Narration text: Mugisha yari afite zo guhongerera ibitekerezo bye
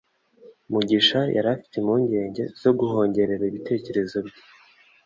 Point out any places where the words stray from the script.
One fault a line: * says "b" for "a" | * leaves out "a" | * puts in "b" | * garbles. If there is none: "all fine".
* puts in "impungenge"